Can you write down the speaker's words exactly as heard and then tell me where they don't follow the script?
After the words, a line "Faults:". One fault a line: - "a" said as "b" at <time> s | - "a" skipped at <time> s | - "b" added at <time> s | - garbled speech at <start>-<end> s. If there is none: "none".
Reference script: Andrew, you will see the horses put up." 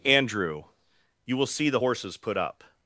Andrew, you will see the horses put up."
Faults:
none